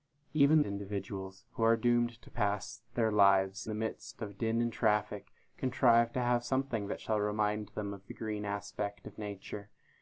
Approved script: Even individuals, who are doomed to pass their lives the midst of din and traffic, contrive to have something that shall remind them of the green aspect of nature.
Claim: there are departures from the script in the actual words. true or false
false